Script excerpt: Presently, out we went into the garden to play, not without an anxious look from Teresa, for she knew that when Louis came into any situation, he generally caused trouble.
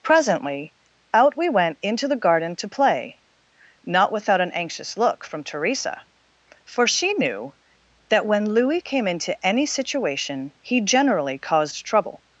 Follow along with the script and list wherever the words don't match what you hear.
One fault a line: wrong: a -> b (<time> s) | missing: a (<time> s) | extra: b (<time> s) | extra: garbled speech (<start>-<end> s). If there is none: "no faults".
no faults